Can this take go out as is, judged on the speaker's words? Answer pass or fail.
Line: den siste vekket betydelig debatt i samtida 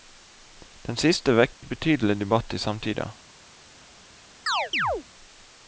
pass